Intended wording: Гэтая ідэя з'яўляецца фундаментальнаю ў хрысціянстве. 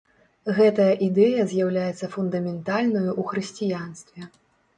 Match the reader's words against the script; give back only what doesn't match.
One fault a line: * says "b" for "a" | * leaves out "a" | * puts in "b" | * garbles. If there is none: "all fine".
all fine